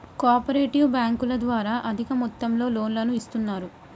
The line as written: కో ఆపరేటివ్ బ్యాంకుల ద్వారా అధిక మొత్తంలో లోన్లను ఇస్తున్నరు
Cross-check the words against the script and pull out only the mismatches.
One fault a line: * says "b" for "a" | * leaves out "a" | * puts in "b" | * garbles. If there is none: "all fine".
all fine